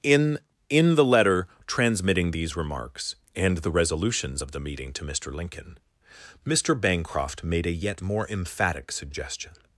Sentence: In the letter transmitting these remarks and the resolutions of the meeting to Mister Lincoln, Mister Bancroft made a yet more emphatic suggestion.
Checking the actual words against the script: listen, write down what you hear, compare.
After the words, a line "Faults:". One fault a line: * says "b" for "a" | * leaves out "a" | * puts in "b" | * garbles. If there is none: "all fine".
In in the letter transmitting these remarks and the resolutions of the meeting to Mister Lincoln, Mister Bancroft made a yet more emphatic suggestion.
Faults:
* puts in "in"